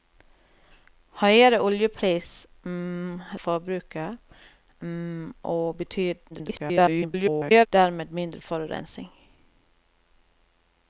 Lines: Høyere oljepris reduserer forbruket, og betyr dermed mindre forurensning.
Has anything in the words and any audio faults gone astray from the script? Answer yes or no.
yes